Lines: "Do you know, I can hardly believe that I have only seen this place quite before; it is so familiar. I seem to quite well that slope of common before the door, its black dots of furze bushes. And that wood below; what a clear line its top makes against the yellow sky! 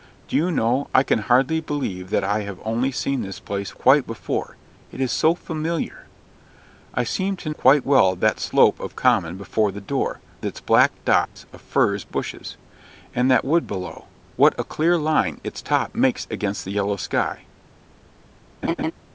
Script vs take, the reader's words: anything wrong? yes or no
no